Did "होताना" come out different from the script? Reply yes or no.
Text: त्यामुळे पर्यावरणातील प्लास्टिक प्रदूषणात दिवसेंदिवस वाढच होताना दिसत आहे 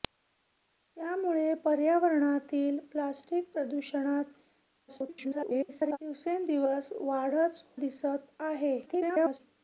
yes